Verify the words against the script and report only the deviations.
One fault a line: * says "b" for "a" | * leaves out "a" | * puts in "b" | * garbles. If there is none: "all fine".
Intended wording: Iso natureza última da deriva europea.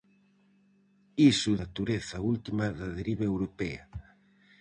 all fine